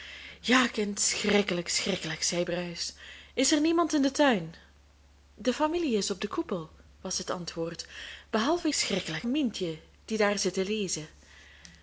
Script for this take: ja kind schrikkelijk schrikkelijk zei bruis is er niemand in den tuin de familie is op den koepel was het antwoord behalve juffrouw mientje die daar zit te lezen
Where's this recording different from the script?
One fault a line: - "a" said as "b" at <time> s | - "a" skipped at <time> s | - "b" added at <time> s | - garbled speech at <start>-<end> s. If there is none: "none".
- "juffrouw" said as "schrikkelijk" at 8.7 s